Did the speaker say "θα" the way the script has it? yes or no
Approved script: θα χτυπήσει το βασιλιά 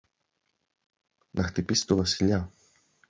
no